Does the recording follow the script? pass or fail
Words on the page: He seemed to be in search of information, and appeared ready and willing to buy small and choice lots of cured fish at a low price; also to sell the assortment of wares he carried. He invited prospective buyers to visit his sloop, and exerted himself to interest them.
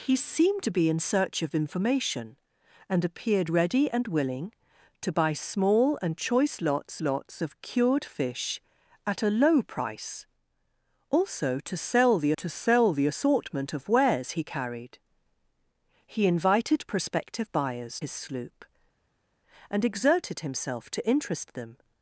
fail